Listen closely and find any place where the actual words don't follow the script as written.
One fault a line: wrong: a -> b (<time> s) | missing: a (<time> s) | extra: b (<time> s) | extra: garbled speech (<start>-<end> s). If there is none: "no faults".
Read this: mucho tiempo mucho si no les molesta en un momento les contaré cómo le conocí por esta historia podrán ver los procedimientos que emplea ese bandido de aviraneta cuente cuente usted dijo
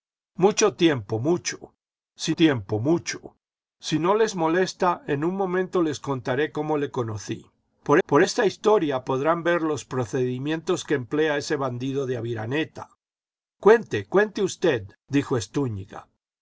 extra: tiempo mucho si (2.3 s)
extra: por (8.1 s)